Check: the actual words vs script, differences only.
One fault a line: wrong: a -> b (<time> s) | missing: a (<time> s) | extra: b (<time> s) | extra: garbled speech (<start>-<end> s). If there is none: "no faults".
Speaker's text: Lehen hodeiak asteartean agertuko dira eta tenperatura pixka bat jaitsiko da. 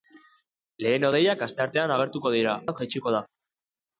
missing: eta tenperatura pixka (2.5 s)